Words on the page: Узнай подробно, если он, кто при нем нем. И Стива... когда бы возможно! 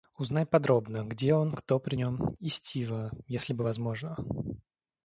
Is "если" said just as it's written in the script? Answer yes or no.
no